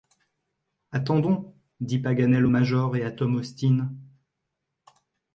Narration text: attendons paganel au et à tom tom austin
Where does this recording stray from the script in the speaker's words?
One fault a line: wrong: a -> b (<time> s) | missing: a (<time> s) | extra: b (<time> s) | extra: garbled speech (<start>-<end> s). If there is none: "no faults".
extra: dit (1.8 s)
extra: major (2.5 s)
missing: tom (3.4 s)